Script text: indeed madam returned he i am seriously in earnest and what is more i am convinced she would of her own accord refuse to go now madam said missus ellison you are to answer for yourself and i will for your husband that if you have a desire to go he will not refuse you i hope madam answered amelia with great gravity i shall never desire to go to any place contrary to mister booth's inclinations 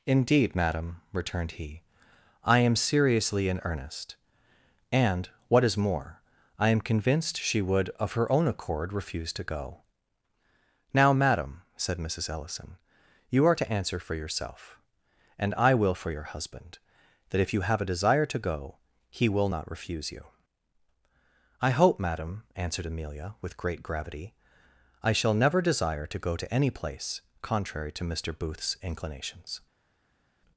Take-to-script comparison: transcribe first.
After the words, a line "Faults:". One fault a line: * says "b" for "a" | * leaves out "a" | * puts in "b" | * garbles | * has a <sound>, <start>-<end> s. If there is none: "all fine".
indeed madam returned he i am seriously in earnest and what is more i am convinced she would of her own accord refuse to go now madam said missus ellison you are to answer for yourself and i will for your husband that if you have a desire to go he will not refuse you i hope madam answered amelia with great gravity i shall never desire to go to any place contrary to mister booth's inclinations
Faults:
all fine